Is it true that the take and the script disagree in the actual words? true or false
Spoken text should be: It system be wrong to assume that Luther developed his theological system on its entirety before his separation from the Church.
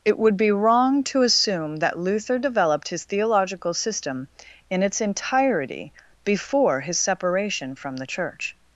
true